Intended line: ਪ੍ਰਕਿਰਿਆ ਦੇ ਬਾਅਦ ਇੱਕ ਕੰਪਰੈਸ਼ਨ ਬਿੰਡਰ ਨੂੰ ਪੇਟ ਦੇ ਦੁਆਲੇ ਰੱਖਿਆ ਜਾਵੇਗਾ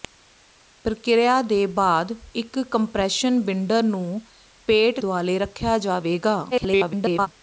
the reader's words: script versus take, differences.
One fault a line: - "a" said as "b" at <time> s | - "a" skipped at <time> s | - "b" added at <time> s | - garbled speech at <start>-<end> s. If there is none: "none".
- "ਦੇ" skipped at 5.0 s
- garbled speech at 6.5-7.3 s